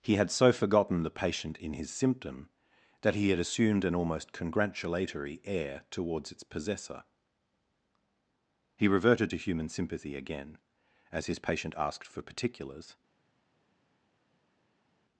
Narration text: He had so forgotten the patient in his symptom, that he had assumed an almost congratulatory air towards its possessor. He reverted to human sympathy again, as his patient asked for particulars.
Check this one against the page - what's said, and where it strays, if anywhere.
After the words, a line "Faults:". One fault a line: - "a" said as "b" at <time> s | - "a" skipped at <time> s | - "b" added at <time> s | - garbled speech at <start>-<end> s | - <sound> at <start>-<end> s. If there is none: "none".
He had so forgotten the patient in his symptom, that he had assumed an almost congratulatory air towards its possessor. He reverted to human sympathy again, as his patient asked for particulars.
Faults:
none